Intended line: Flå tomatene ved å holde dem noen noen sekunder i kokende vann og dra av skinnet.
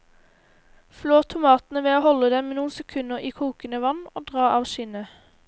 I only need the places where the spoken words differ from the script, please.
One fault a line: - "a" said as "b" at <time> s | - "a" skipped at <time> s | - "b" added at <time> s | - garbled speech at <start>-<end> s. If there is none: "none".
- "noen" skipped at 2.7 s